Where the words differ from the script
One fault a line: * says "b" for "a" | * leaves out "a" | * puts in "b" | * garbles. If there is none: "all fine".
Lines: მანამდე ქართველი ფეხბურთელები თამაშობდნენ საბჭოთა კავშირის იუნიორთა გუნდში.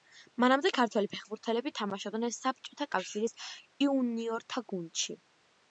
all fine